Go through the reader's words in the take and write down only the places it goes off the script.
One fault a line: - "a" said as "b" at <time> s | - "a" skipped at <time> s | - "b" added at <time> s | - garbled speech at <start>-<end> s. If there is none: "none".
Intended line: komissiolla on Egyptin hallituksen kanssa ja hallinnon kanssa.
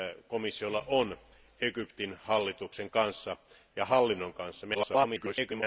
- garbled speech at 4.7-5.6 s